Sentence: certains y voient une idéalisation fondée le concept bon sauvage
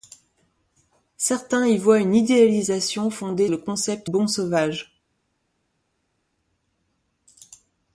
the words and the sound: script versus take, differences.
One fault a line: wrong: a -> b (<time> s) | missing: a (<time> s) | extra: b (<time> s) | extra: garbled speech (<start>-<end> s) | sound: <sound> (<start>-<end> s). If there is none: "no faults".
no faults